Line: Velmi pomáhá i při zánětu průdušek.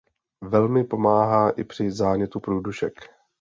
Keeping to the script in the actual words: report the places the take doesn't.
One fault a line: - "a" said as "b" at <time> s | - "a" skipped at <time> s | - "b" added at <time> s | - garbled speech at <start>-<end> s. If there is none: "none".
none